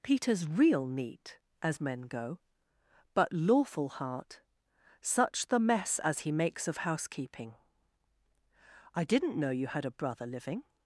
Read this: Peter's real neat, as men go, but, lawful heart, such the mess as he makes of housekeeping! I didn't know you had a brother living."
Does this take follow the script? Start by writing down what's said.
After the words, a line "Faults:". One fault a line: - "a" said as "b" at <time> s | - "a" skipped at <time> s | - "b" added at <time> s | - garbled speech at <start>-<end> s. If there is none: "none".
Peter's real neat, as men go, but, lawful heart, such the mess as he makes of housekeeping! I didn't know you had a brother living."
Faults:
none